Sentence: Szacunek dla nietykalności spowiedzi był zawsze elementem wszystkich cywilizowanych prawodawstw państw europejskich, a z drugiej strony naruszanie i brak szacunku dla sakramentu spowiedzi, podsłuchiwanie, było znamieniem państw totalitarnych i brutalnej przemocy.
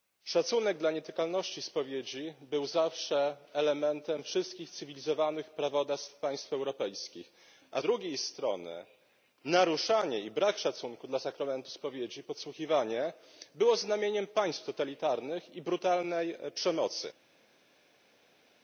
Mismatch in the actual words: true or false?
true